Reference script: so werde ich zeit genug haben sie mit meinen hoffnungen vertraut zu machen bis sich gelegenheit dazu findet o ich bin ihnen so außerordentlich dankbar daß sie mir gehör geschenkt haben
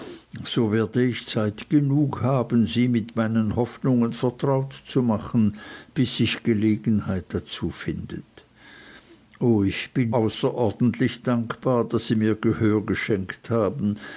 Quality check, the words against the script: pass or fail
fail